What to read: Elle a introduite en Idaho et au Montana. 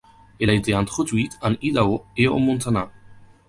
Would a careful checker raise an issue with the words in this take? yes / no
yes